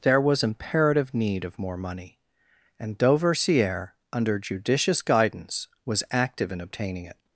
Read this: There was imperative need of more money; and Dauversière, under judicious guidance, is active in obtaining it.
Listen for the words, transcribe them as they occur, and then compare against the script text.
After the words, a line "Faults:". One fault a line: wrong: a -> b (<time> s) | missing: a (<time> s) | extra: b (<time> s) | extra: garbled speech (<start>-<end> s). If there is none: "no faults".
There was imperative need of more money; and Dauversière, under judicious guidance, was active in obtaining it.
Faults:
wrong: is -> was (5.8 s)